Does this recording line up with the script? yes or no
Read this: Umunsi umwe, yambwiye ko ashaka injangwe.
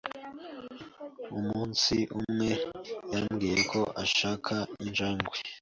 yes